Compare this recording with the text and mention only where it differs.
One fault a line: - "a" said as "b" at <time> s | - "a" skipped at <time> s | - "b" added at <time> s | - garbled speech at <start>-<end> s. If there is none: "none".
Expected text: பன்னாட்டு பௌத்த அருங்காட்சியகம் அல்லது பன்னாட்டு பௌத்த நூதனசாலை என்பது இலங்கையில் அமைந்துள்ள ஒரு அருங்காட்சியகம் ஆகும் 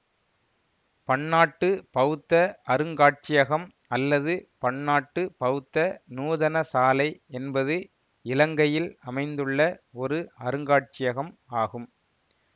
none